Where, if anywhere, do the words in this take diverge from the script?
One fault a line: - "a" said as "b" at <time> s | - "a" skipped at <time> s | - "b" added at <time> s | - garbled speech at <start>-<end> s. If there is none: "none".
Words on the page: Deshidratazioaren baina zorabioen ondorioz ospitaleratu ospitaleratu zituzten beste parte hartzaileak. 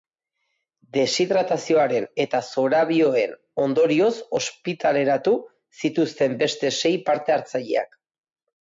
- "baina" said as "eta" at 2.2 s
- "ospitaleratu" skipped at 5.3 s
- "sei" added at 6.8 s